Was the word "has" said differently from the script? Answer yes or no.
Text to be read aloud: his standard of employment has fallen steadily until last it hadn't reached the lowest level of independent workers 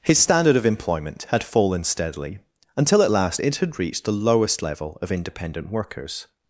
yes